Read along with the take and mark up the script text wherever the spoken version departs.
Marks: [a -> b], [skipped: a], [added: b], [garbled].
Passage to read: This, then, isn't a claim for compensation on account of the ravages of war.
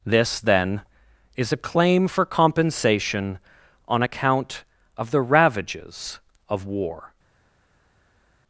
This, then, [isn't -> is] a claim for compensation on account of the ravages of war.